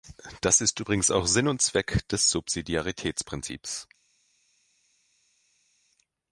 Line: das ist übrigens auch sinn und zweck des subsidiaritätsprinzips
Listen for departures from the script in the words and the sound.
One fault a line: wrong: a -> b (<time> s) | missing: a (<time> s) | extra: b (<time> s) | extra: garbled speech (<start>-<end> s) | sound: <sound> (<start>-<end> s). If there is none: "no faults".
no faults